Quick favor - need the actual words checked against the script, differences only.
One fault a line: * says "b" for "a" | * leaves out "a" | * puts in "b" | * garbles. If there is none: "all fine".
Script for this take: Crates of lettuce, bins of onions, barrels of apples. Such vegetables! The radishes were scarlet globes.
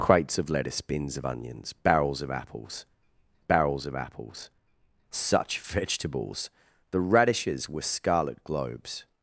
* puts in "barrels of apples"